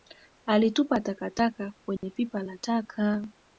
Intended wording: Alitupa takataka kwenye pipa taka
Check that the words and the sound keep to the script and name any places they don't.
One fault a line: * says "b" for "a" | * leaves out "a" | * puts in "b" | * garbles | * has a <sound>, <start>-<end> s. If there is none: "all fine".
* has a dropout, 2.0-2.0 s
* puts in "la"